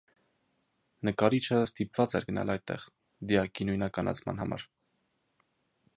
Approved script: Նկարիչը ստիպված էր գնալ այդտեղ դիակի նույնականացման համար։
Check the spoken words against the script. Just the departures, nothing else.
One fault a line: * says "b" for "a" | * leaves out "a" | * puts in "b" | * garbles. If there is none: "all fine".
all fine